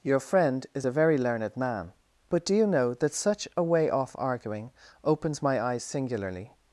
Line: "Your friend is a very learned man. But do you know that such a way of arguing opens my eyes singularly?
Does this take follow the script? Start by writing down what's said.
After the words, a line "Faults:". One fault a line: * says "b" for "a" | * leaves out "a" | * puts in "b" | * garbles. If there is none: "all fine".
"Your friend is a very learned man. But do you know that such a way off arguing opens my eyes singularly?
Faults:
* says "off" for "of"